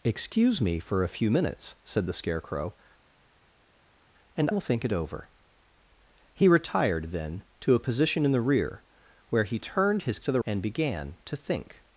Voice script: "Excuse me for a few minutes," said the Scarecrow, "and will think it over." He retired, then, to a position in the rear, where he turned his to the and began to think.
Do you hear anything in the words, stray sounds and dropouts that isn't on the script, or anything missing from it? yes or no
no